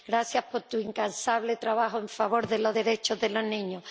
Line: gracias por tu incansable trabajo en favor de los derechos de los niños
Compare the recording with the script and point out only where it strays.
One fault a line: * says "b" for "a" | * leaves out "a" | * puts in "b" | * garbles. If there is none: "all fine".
all fine